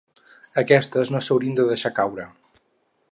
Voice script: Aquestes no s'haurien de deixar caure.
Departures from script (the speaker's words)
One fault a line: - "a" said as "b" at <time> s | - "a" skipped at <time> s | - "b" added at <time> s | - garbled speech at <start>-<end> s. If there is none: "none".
none